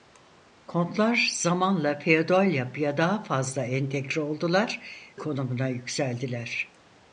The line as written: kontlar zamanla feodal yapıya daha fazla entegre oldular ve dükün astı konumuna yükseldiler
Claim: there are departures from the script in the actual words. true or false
true